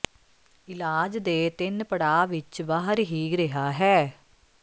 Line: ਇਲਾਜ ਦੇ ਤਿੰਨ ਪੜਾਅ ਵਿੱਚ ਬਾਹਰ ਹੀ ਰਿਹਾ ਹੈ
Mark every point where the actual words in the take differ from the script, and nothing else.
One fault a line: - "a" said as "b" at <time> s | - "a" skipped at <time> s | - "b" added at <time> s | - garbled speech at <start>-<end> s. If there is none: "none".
none